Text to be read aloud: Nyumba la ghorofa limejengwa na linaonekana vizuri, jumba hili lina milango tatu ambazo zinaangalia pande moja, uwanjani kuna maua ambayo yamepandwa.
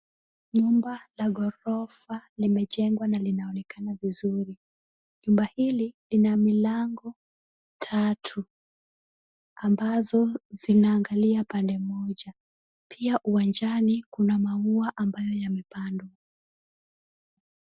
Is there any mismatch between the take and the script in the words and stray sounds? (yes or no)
yes